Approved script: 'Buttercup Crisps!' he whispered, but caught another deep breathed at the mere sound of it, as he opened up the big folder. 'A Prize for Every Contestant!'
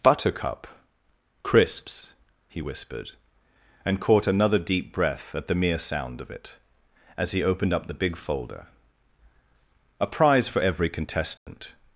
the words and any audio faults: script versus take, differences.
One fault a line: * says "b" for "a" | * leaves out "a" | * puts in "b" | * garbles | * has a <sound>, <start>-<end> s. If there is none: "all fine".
* says "and" for "but"
* says "breath" for "breathed"
* has a dropout, 11.4-11.5 s